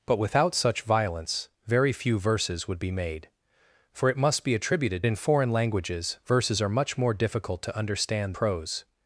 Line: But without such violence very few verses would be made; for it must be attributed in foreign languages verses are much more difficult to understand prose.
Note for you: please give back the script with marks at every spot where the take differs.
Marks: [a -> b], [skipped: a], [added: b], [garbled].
But without such violence very few verses would be made; for it must be attributed in foreign languages verses are much more difficult to understand prose.